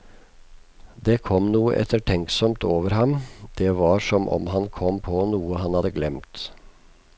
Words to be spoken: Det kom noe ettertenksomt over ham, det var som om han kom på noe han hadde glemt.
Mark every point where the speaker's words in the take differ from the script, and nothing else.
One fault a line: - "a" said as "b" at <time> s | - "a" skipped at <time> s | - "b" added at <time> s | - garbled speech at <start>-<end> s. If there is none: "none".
none